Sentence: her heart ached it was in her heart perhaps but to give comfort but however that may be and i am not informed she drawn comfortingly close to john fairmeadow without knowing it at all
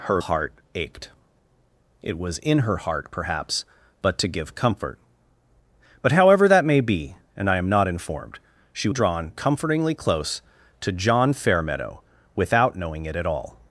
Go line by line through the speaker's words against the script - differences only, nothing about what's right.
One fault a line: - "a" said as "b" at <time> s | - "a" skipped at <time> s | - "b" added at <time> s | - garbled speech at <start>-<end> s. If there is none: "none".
none